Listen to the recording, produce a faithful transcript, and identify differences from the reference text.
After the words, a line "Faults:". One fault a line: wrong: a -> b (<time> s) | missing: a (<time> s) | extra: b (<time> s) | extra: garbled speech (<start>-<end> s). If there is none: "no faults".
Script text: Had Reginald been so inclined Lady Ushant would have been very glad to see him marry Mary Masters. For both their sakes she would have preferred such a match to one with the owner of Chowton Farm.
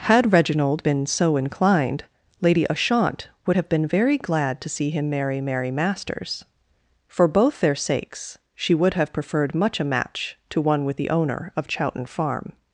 Had Reginald been so inclined Lady Ushant would have been very glad to see him marry Mary Masters. For both their sakes she would have preferred much a match to one with the owner of Chowton Farm.
Faults:
wrong: such -> much (9.5 s)